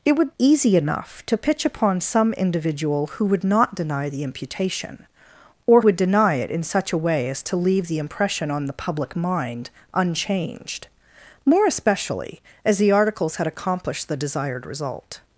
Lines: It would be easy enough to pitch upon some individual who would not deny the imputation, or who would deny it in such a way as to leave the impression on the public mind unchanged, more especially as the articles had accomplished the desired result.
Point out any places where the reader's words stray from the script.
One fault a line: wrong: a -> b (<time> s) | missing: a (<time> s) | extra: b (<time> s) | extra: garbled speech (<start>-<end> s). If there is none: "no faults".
missing: be (0.3 s)
missing: who (5.8 s)